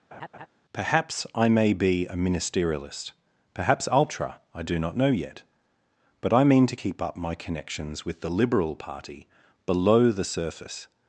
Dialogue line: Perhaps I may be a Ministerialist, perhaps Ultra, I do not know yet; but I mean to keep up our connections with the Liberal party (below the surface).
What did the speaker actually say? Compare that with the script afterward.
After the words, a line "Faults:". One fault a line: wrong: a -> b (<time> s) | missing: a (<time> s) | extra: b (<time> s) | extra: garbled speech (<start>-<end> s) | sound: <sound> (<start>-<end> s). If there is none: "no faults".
Perhaps I may be a Ministerialist, perhaps Ultra, I do not know yet; but I mean to keep up my connections with the Liberal party (below the surface).
Faults:
sound: laugh (0.1-0.5 s)
wrong: our -> my (7.1 s)